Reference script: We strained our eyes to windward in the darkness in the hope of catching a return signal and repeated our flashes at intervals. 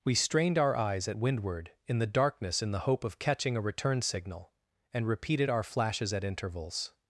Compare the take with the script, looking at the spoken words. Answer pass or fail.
fail